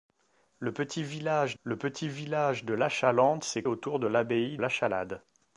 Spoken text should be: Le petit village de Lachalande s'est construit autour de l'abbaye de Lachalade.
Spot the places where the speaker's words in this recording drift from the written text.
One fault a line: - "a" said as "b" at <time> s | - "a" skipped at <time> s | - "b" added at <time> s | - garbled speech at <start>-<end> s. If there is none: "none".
- "le petit village" added at 1.6 s
- "construit" skipped at 3.6 s
- "de" skipped at 4.6 s